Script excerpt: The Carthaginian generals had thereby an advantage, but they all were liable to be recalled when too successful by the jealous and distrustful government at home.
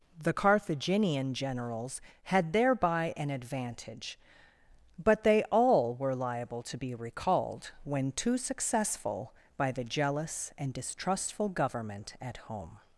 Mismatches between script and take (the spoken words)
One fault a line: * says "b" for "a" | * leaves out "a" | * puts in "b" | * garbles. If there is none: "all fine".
all fine